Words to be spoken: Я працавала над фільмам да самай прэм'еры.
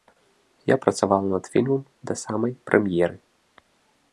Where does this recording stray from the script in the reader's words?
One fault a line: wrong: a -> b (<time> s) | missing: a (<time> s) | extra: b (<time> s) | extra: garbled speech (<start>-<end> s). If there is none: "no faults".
no faults